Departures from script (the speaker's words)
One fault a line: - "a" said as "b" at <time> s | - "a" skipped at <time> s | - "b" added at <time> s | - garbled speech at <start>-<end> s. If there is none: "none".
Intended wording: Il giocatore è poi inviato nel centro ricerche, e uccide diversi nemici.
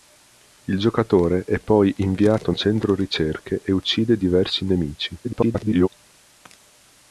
- "nel" skipped at 2.5 s
- garbled speech at 5.2-5.9 s